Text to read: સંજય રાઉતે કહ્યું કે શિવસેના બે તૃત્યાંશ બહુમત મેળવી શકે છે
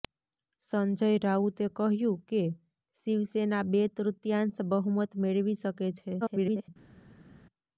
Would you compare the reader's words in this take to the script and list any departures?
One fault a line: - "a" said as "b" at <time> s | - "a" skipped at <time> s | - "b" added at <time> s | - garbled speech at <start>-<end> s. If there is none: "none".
- garbled speech at 6.2-6.7 s